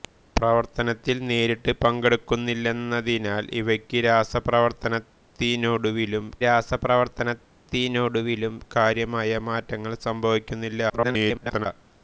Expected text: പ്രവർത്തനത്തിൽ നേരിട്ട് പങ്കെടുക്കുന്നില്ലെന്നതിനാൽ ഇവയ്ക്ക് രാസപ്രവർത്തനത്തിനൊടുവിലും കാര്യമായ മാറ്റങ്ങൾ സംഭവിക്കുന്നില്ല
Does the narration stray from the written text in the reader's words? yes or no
yes